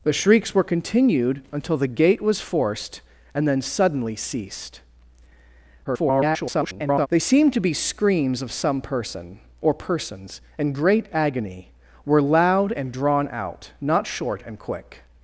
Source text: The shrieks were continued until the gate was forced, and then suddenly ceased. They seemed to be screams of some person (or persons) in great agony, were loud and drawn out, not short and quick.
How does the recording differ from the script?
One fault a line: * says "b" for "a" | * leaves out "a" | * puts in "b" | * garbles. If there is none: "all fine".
* garbles